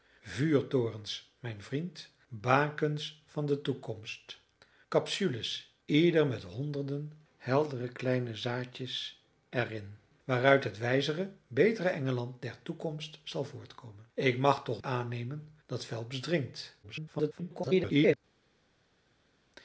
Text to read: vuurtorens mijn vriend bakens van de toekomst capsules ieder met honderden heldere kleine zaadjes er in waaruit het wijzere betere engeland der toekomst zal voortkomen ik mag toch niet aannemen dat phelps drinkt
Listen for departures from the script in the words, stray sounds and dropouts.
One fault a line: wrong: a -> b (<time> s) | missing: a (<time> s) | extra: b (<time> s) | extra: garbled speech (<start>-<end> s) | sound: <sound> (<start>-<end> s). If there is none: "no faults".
missing: niet (14.8 s)
extra: garbled speech (16.8-18.2 s)